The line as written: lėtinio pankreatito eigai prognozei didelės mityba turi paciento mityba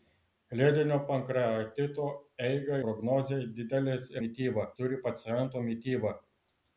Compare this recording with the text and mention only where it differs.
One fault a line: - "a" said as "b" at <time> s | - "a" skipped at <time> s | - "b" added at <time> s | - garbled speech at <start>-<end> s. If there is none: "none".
none